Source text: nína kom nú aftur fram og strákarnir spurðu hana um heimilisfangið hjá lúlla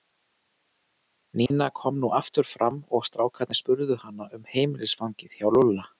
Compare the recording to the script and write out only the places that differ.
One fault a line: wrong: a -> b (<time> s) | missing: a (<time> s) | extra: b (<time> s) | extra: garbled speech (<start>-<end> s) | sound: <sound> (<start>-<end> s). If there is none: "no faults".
sound: dropout (1.5-1.5 s)